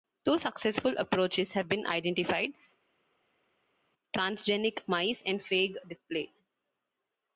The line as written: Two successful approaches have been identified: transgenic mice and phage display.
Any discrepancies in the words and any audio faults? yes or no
no